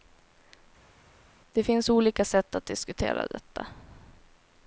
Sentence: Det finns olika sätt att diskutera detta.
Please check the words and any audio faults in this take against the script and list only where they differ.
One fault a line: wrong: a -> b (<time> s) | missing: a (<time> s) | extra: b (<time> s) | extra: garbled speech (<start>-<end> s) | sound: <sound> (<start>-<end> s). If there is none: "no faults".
no faults